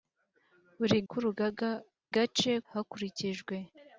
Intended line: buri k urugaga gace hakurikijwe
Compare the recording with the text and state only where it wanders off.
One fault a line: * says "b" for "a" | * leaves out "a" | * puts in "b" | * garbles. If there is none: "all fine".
all fine